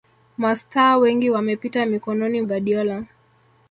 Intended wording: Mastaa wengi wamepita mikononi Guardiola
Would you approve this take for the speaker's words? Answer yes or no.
yes